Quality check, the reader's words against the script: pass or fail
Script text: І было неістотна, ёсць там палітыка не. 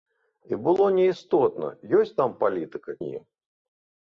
pass